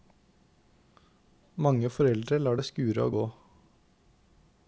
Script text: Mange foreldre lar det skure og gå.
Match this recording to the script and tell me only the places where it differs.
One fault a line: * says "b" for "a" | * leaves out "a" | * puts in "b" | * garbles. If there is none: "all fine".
all fine